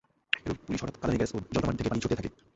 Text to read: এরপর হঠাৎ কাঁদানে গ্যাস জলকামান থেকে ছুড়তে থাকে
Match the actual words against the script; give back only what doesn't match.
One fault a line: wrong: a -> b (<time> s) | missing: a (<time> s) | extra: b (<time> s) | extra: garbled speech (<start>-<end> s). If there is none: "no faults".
extra: পুলিশ (0.6 s)
extra: ও (1.3 s)
extra: পানি (1.9 s)